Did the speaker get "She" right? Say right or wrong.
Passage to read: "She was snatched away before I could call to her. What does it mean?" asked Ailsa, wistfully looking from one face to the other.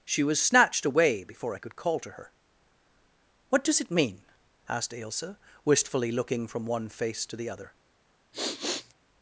right